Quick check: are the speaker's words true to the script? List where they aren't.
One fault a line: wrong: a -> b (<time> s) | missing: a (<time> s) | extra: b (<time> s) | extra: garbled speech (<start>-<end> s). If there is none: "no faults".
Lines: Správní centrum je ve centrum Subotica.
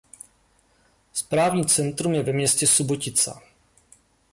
wrong: centrum -> městě (2.3 s)